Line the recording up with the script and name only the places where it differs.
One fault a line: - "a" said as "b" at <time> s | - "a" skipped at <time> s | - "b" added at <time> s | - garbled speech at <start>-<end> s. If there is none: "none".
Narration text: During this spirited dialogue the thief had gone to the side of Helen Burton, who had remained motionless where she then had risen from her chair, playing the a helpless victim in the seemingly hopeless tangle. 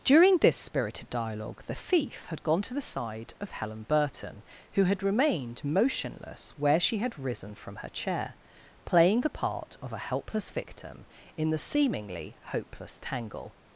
- "then" skipped at 7.0 s
- "part of" added at 9.3 s